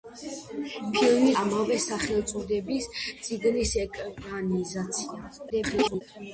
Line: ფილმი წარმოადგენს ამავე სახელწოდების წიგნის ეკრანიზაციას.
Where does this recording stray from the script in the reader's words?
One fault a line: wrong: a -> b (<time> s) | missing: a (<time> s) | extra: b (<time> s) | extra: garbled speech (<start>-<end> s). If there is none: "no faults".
missing: წარმოადგენს (1.3 s)
extra: garbled speech (5.5-6.0 s)